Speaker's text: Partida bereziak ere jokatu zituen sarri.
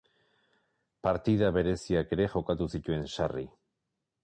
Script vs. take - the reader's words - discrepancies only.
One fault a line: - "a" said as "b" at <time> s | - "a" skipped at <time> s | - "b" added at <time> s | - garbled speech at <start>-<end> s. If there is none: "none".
none